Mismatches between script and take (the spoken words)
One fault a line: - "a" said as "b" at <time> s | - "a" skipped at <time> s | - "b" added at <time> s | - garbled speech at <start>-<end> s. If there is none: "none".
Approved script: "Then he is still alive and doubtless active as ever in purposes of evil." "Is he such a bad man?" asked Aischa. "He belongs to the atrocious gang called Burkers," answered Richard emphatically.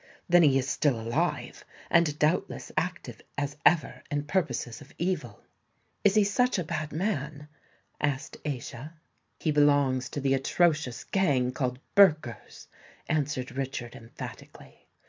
none